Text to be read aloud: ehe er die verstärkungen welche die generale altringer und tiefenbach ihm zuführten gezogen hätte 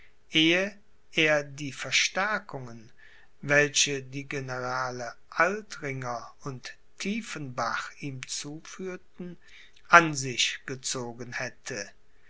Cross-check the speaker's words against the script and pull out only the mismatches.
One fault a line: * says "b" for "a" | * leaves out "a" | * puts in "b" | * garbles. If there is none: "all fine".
* puts in "an sich"